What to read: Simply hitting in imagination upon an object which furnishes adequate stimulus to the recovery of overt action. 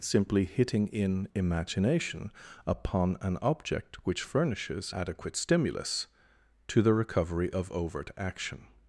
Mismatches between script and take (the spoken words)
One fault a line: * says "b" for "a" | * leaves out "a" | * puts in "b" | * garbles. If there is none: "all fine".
all fine